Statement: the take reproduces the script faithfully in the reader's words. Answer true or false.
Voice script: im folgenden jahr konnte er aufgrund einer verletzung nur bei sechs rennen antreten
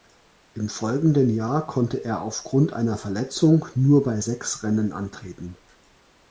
true